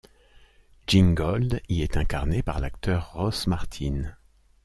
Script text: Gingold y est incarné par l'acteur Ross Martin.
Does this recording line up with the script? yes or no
yes